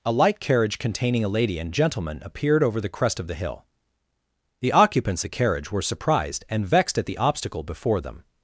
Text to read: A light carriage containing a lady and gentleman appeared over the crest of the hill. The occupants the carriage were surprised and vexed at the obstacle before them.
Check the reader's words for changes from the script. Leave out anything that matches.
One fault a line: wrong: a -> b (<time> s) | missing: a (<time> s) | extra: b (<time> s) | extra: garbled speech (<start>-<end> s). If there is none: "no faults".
no faults